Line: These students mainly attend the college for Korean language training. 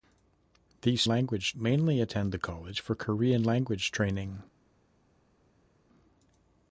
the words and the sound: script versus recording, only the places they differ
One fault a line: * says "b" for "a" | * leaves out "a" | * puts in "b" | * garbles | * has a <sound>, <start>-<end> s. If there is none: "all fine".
* says "language" for "students"